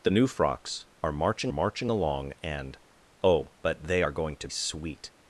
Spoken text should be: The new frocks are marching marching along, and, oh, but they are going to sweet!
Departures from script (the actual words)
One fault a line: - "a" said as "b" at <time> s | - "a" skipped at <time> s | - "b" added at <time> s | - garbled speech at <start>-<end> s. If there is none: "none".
none